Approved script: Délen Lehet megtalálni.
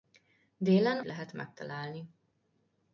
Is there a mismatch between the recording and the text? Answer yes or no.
no